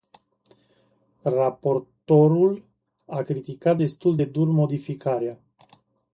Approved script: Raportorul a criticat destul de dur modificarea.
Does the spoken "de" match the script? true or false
true